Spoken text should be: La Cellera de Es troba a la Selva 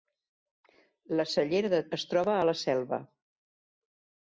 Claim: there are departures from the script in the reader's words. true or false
false